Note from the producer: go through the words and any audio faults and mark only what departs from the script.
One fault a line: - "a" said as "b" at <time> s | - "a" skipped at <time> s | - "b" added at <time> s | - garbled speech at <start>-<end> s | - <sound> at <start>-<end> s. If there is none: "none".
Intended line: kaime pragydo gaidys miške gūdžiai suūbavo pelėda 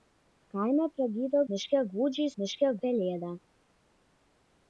- "gaidys" skipped at 1.4 s
- "suūbavo" said as "miške" at 2.4 s